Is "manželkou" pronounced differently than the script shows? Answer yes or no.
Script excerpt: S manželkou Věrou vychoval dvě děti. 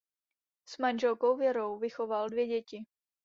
no